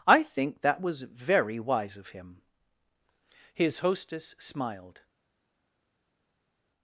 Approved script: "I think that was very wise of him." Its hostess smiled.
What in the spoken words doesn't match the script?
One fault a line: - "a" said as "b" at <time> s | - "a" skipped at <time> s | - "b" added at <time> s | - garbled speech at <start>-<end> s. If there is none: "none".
- "Its" said as "His" at 3.5 s